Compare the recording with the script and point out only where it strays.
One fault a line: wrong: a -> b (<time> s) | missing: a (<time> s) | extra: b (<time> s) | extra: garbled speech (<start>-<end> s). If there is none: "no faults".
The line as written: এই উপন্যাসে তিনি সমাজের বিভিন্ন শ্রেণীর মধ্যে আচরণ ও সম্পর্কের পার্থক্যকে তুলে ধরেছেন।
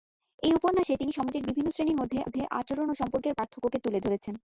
extra: মধ্যে (2.2 s)